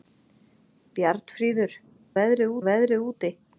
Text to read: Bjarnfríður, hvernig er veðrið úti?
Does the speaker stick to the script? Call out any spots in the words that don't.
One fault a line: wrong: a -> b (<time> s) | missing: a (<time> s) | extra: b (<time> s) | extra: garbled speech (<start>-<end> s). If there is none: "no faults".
wrong: hvernig -> veðrið (2.2 s)